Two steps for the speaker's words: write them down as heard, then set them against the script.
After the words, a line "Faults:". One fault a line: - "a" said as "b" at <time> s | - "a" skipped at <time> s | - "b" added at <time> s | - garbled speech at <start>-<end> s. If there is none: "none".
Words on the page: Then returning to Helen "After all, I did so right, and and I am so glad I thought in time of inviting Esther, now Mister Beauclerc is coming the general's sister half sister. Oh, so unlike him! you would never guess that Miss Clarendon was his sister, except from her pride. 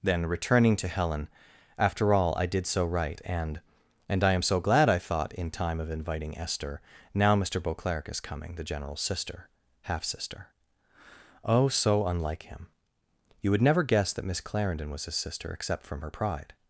Then returning to Helen "After all, I did so right, and and I am so glad I thought in time of inviting Esther, now Mister Beauclerc is coming the general's sister half sister. Oh, so unlike him! you would never guess that Miss Clarendon was his sister, except from her pride.
Faults:
none